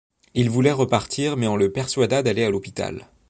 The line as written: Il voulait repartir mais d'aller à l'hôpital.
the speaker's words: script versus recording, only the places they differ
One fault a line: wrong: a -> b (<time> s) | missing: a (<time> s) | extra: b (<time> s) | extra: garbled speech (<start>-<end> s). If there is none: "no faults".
extra: on le persuada (1.4 s)